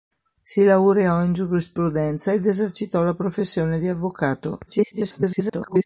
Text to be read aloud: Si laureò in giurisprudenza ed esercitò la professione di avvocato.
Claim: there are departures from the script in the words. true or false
true